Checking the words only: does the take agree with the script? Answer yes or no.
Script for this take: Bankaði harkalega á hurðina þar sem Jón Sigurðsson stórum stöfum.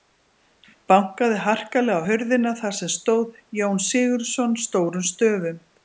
no